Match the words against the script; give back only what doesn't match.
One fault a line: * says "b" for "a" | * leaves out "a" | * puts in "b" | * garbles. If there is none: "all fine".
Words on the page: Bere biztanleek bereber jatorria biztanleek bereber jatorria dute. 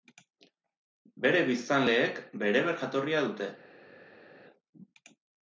* leaves out "biztanleek bereber jatorria"